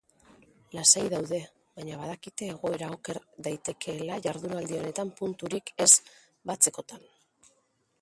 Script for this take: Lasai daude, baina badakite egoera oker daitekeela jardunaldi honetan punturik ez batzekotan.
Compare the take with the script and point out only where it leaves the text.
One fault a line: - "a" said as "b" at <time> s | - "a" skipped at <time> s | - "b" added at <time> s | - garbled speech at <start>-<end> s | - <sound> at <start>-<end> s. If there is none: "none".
none